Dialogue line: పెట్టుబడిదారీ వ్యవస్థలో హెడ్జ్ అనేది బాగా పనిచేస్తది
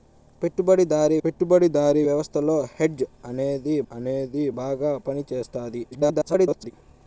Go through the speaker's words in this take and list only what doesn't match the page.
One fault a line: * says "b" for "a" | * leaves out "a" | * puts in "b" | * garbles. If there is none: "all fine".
* puts in "పెట్టుబడిదారీ"
* puts in "అనేది"
* garbles